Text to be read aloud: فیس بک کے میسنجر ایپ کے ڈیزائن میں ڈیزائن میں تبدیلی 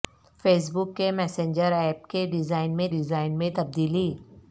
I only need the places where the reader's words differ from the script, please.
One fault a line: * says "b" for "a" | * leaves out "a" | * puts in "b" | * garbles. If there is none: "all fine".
all fine